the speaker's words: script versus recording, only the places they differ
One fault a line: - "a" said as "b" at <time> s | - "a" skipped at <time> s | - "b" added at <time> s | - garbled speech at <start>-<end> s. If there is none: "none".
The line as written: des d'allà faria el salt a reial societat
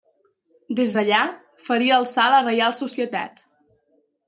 none